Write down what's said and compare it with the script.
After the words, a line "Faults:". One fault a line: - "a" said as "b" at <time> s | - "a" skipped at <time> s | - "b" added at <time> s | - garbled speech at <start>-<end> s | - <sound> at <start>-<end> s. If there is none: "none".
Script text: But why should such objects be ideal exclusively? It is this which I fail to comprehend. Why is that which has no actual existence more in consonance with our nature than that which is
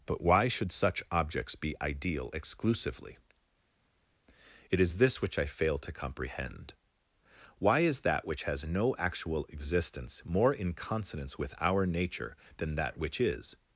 But why should such objects be ideal exclusively? It is this which I fail to comprehend. Why is that which has no actual existence more in consonance with our nature than that which is
Faults:
none